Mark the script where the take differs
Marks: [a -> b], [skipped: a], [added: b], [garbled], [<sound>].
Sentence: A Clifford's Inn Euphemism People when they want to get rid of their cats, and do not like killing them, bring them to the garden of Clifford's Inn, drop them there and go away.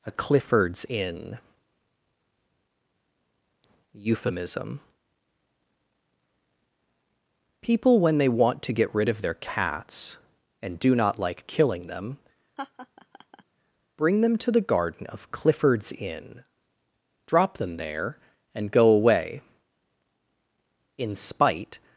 A Clifford's Inn Euphemism People when they want to get rid of their cats, and do not like killing them, [laugh] bring them to the garden of Clifford's Inn, drop them there and go away. [added: In spite]